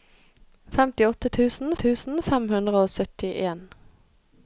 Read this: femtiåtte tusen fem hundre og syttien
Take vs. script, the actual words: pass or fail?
fail